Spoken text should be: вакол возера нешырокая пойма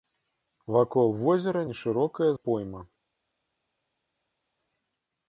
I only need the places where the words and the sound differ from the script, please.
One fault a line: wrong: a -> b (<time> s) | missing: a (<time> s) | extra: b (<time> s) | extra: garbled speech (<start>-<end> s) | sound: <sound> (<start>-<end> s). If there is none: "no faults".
no faults